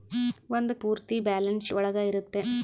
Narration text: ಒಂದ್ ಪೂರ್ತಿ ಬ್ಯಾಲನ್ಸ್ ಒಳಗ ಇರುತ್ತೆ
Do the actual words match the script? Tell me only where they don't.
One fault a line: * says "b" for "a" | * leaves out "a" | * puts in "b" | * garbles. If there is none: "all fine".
all fine